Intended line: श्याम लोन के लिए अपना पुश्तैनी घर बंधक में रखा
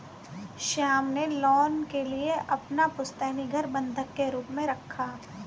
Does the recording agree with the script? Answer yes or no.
no